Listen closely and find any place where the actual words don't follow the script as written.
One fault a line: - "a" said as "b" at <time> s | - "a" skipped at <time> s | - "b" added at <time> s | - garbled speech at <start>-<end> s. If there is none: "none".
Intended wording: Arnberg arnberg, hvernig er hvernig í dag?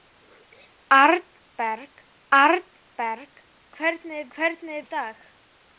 none